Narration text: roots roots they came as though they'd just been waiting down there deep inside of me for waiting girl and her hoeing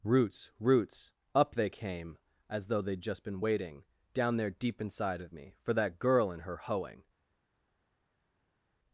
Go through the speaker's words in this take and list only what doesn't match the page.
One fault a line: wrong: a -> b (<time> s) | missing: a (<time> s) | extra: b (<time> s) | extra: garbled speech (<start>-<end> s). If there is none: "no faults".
extra: up (1.4 s)
wrong: waiting -> that (5.7 s)